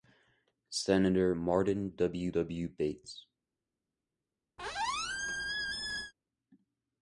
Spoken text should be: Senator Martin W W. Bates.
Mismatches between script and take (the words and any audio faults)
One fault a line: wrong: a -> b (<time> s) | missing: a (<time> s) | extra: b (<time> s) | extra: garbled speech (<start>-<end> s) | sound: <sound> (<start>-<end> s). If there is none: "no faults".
sound: squeak (4.6-6.1 s)